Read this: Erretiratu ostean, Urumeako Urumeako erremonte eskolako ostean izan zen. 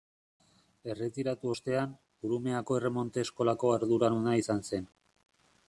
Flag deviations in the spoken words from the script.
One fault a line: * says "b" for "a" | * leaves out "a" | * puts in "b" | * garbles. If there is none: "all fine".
* leaves out "Urumeako"
* says "arduraduna" for "ostean"